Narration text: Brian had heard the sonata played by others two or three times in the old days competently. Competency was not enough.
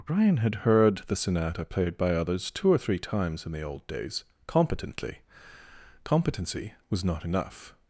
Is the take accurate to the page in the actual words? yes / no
yes